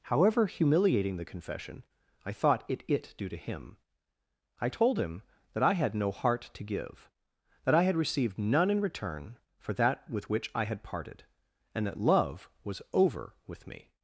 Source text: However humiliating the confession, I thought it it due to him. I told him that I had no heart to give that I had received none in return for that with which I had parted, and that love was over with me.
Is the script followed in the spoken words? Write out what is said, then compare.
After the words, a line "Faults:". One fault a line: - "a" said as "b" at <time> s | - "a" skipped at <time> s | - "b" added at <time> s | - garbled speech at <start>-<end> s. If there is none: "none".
However humiliating the confession, I thought it it due to him. I told him that I had no heart to give that I had received none in return for that with which I had parted, and that love was over with me.
Faults:
none